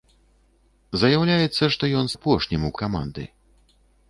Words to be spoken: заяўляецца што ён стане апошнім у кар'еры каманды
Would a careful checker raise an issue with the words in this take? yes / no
yes